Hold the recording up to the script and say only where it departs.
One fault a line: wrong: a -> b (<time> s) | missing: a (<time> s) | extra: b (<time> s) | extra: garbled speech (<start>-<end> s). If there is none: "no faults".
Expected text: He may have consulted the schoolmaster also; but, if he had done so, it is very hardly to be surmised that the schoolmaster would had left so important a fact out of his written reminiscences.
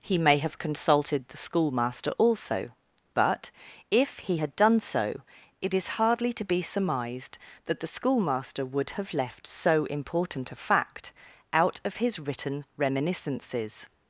missing: very (6.0 s)
wrong: had -> have (8.9 s)